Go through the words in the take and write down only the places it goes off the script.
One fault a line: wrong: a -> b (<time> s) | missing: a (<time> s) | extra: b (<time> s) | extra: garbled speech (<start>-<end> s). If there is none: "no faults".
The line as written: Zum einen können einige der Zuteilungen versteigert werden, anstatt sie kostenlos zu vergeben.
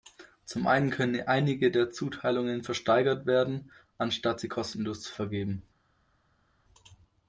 no faults